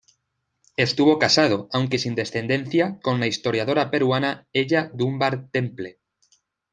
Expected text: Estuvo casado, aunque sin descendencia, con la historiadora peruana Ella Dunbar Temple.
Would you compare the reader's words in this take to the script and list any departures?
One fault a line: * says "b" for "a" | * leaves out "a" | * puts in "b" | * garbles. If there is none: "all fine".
all fine